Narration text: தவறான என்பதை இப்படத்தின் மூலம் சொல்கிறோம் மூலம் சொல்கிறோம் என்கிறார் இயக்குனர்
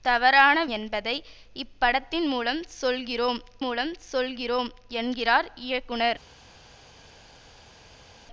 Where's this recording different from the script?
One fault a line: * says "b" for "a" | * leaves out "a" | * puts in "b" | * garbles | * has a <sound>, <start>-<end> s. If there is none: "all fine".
all fine